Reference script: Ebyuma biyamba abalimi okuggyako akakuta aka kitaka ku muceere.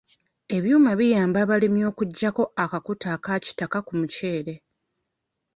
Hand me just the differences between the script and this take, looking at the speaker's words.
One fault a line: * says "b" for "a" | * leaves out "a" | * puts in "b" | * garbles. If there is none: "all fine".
all fine